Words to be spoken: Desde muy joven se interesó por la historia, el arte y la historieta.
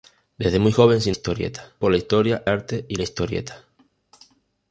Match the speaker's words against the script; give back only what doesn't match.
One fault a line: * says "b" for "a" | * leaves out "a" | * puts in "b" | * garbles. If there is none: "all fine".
* says "historieta" for "interesó"
* leaves out "el"